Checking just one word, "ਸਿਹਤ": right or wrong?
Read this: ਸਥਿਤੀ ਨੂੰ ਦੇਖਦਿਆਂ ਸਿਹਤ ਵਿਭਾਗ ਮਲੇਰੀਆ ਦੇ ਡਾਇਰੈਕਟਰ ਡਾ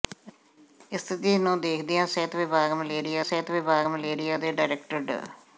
right